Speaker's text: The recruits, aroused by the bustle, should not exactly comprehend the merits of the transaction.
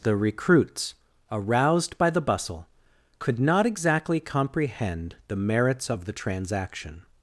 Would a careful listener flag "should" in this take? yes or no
yes